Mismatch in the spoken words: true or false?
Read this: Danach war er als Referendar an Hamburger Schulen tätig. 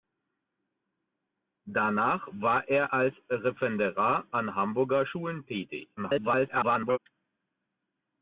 true